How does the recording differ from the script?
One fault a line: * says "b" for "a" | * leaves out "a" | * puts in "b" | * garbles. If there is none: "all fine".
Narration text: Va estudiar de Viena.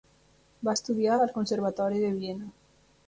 * puts in "al Conservatori"